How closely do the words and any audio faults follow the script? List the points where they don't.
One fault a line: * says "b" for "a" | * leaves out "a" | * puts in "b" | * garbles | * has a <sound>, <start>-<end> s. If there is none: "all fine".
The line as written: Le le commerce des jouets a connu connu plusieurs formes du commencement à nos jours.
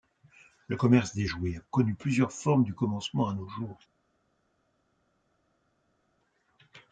* leaves out "le"
* leaves out "connu"